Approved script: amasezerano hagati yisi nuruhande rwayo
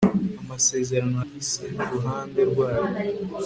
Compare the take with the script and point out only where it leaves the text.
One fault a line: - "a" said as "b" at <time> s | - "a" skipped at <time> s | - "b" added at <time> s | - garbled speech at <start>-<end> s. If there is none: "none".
- "hagati" skipped at 1.2 s